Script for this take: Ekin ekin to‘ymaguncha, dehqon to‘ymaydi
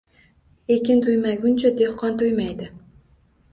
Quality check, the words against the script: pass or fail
fail